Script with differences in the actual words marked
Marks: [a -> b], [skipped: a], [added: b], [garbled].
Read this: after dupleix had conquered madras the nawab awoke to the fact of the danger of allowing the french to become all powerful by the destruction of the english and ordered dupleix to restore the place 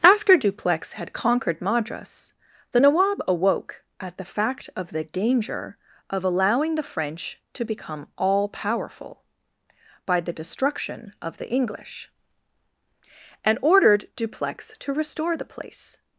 after dupleix had conquered madras the nawab awoke [to -> at] the fact of the danger of allowing the french to become all powerful by the destruction of the english and ordered dupleix to restore the place